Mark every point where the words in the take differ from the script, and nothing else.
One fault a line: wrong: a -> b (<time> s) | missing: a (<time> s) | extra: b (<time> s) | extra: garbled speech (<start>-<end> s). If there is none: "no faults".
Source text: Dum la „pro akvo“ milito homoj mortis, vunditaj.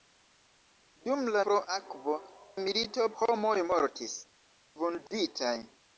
no faults